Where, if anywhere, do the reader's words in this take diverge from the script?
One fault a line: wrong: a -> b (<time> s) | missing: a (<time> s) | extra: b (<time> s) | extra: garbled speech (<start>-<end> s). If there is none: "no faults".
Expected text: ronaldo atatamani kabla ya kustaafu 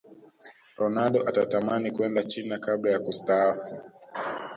extra: kwenda china (1.9 s)